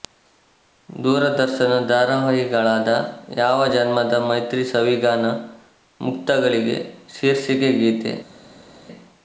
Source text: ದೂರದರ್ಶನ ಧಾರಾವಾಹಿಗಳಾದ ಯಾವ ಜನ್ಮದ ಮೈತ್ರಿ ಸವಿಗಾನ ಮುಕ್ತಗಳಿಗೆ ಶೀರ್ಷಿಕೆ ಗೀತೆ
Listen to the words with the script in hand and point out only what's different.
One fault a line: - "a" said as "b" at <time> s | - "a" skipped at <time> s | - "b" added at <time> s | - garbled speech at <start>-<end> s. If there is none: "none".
none